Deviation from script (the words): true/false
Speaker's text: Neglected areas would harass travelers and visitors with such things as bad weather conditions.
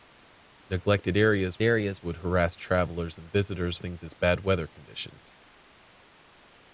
true